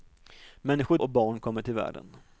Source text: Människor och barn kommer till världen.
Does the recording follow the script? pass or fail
pass